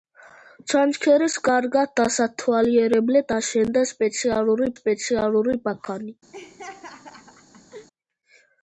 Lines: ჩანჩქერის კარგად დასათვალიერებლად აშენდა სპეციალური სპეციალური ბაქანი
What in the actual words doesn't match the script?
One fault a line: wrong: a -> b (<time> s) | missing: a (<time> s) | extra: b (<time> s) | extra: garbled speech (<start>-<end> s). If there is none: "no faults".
no faults